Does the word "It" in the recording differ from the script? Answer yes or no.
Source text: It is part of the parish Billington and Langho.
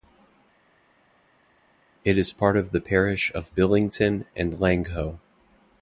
no